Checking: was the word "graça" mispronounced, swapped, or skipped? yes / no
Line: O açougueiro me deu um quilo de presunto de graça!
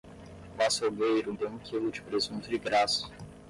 no